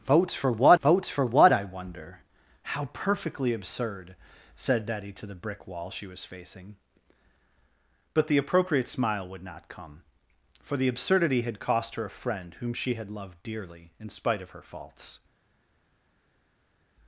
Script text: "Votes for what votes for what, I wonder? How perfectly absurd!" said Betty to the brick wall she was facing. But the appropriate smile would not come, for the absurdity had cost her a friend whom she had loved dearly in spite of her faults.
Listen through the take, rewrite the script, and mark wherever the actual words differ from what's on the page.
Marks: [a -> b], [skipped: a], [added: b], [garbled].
"Votes for what votes for what, I wonder? How perfectly absurd!" said Betty to the brick wall she was facing. But the appropriate smile would not come, for the absurdity had cost her a friend whom she had loved dearly in spite of her faults.